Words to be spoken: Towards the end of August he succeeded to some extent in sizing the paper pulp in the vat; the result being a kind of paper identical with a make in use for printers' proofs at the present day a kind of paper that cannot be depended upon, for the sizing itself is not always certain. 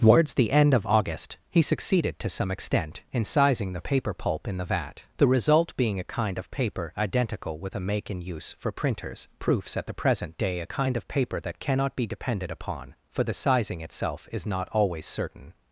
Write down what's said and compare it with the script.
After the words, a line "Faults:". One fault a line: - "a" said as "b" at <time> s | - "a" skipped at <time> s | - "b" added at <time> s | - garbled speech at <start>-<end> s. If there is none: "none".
Towards the end of August he succeeded to some extent in sizing the paper pulp in the vat; the result being a kind of paper identical with a make in use for printers' proofs at the present day a kind of paper that cannot be depended upon, for the sizing itself is not always certain.
Faults:
none